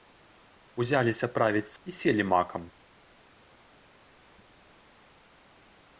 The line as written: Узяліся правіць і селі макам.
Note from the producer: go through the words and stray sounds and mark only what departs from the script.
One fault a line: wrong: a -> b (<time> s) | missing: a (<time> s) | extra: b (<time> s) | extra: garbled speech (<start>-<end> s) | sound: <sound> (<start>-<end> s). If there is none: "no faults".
no faults